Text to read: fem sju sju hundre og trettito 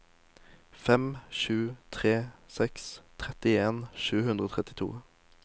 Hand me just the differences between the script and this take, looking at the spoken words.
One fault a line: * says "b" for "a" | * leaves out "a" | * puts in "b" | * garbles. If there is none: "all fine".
* puts in "tre seks trettien"